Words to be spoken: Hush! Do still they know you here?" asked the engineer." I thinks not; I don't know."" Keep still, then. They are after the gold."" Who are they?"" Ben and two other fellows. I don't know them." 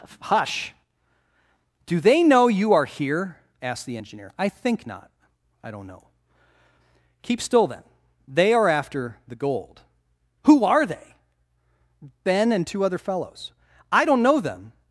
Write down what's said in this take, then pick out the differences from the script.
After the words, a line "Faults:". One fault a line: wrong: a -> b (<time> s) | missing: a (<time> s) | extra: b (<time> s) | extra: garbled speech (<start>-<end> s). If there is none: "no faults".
Hush! Do they know you are here?" asked the engineer." I think not; I don't know."" Keep still, then. They are after the gold."" Who are they?"" Ben and two other fellows. I don't know them."
Faults:
missing: still (2.0 s)
extra: are (2.7 s)
wrong: thinks -> think (4.5 s)